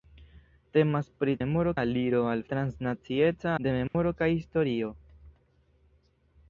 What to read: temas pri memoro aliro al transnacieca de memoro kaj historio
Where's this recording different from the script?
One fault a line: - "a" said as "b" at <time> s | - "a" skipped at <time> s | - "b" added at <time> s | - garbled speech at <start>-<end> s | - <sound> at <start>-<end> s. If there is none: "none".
- dropout at 3.9-3.9 s